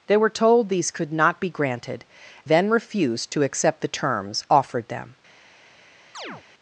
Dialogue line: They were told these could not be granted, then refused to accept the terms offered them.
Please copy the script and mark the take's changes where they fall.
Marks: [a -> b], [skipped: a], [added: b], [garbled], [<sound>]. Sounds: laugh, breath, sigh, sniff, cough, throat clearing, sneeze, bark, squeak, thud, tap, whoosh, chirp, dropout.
They were told these could not be granted, then refused to accept the terms offered them. [chirp]